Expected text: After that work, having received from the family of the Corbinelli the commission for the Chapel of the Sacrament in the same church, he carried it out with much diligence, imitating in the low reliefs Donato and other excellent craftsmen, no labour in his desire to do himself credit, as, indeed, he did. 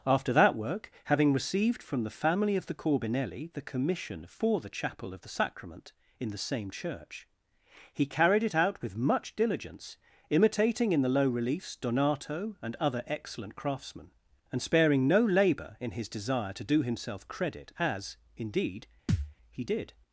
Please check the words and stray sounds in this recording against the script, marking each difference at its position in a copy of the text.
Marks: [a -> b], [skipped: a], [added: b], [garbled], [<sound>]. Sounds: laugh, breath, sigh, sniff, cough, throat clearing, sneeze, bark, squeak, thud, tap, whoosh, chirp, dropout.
After that work, having received from the family of the Corbinelli the commission for the Chapel of the Sacrament in the same church, he carried it out with much diligence, imitating in the low reliefs Donato and other excellent craftsmen, [added: and sparing] no labour in his desire to do himself credit, as, indeed, [thud] he did.